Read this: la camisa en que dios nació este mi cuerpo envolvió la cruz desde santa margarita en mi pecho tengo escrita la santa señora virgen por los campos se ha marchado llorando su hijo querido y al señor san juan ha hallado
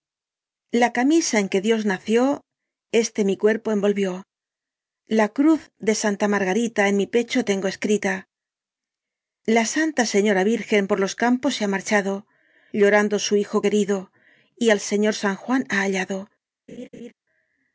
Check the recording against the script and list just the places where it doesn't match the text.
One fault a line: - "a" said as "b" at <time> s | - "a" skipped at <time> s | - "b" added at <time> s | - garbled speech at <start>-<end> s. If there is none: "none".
- "desde" said as "de" at 5.8 s